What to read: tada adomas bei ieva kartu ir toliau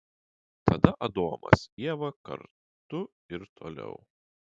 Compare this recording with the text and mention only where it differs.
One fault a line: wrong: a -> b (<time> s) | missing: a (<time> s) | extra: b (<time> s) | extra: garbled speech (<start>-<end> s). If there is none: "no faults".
missing: bei (1.6 s)